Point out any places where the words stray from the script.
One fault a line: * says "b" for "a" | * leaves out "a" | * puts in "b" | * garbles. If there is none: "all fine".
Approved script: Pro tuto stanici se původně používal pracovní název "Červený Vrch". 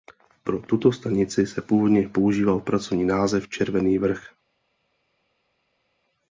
all fine